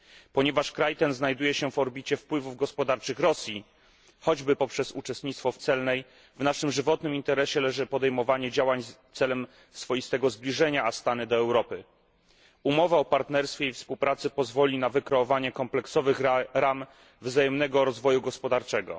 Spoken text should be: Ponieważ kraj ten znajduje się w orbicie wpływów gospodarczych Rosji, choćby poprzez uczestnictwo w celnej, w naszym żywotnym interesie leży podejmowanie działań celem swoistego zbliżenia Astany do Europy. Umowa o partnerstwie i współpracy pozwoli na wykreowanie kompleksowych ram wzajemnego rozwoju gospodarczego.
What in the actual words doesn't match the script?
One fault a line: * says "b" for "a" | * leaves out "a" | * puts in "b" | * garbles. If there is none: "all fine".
all fine